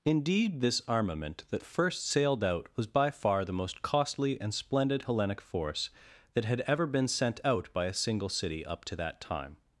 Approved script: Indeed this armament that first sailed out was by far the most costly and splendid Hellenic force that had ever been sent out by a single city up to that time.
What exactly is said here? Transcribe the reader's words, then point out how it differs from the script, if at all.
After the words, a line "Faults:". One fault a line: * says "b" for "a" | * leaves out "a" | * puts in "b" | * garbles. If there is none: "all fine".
Indeed this armament that first sailed out was by far the most costly and splendid Hellenic force that had ever been sent out by a single city up to that time.
Faults:
all fine